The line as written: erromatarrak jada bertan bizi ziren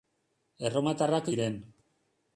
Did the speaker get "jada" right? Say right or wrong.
wrong